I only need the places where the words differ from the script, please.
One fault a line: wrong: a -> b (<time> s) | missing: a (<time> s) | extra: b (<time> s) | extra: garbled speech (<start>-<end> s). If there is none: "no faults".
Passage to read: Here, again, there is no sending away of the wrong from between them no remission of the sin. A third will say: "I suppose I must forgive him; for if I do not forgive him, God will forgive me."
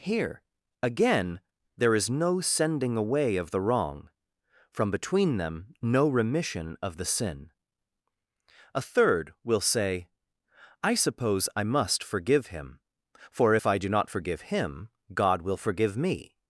no faults